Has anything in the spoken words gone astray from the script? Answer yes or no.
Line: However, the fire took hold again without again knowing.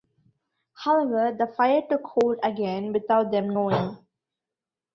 yes